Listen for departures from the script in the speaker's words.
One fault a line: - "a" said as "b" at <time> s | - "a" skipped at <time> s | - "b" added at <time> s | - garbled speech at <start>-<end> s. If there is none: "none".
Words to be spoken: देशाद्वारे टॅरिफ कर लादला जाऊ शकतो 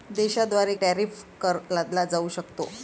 none